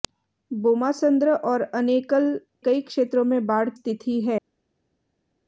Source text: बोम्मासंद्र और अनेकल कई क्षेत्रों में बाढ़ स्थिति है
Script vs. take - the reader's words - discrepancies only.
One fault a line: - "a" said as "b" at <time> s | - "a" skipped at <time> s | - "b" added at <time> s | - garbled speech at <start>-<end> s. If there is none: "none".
none